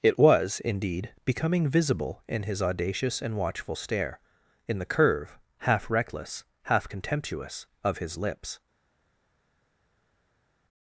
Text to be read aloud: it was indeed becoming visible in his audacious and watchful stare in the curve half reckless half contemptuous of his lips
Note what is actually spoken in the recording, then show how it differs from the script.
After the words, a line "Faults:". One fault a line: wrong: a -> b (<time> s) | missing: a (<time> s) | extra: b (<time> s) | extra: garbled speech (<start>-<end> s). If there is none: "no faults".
it was indeed becoming visible in his audacious and watchful stare in the curve half reckless half contemptuous of his lips
Faults:
no faults